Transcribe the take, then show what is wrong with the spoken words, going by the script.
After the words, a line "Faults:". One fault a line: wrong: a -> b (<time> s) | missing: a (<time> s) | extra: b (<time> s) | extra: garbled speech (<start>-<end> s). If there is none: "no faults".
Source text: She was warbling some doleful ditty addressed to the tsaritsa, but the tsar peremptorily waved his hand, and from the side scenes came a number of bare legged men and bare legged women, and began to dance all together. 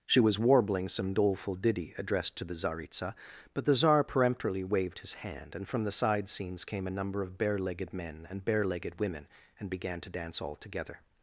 She was warbling some doleful ditty addressed to the tsaritsa, but the tsar peremptorily waved his hand, and from the side scenes came a number of bare legged men and bare legged women, and began to dance all together.
Faults:
no faults